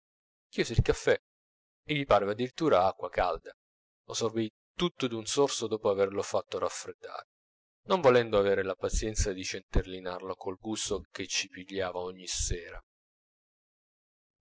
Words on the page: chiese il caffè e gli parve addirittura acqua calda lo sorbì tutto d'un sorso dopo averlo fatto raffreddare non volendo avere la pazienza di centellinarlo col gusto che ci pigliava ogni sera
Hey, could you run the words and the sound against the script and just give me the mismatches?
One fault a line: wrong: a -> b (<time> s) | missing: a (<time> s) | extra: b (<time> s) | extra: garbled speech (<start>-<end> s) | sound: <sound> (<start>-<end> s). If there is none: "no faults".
no faults